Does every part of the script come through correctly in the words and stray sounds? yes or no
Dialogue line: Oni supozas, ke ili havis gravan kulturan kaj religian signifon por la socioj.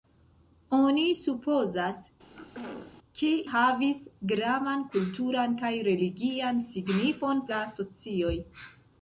no